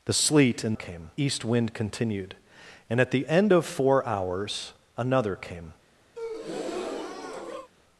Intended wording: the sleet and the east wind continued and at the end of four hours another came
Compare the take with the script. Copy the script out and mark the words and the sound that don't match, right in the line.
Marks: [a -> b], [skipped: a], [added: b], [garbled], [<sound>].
the sleet and [the -> came] east wind continued and at the end of four hours another came [breath]